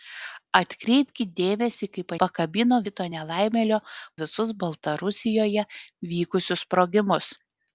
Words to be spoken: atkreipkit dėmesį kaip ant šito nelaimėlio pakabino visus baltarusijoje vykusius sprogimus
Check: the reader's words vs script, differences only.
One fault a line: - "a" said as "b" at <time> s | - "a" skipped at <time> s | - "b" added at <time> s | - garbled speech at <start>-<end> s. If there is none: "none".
- "ant" said as "pakabino" at 2.2 s
- "pakabino" skipped at 3.8 s